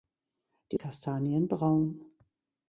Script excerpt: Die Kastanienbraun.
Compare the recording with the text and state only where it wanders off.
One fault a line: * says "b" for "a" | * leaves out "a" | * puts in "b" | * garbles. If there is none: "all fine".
all fine